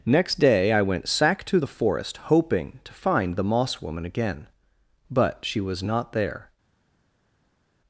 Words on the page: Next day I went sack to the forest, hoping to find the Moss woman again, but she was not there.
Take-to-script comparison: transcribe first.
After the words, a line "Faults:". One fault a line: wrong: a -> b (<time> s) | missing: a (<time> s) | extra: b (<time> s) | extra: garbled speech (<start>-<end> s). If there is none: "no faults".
Next day I went sack to the forest, hoping to find the Moss woman again, but she was not there.
Faults:
no faults